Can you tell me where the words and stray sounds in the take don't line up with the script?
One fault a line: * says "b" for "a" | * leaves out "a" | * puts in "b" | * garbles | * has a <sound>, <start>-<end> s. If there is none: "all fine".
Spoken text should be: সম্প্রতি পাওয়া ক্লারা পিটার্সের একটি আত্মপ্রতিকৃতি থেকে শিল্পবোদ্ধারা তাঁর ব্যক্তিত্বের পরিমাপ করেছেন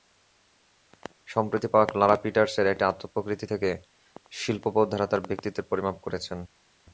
all fine